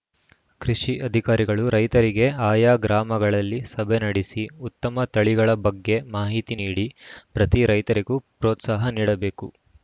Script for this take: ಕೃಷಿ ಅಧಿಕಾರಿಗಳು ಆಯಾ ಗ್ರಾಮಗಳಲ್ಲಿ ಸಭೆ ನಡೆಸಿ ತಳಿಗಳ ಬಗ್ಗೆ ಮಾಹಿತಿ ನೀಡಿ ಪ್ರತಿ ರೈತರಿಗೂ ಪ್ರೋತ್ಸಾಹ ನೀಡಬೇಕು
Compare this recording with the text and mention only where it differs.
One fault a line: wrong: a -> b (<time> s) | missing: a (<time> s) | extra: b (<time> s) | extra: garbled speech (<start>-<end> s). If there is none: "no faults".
extra: ರೈತರಿಗೆ (1.8 s)
extra: ಉತ್ತಮ (4.7 s)